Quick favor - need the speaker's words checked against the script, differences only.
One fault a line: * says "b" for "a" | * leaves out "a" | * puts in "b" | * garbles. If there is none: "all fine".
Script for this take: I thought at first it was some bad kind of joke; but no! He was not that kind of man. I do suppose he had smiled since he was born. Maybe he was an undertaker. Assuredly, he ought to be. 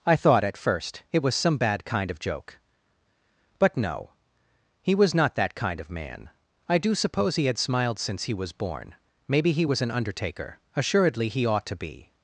all fine